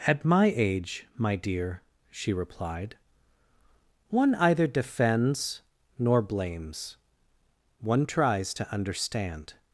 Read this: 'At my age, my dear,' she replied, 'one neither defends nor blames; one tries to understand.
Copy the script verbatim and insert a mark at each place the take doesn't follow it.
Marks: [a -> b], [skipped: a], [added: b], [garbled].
'At my age, my dear,' she replied, 'one [neither -> either] defends nor blames; one tries to understand.